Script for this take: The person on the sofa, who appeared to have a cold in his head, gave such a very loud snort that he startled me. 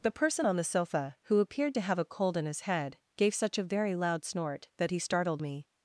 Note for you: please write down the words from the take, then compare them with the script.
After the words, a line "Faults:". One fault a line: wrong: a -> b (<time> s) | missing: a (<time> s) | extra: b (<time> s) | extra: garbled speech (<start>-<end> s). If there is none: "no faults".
The person on the sofa, who appeared to have a cold in his head, gave such a very loud snort that he startled me.
Faults:
no faults